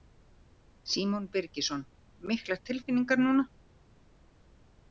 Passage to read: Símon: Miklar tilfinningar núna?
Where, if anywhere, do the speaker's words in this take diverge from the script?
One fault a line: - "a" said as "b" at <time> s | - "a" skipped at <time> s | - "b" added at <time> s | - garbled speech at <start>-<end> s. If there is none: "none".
- "Birgisson" added at 1.4 s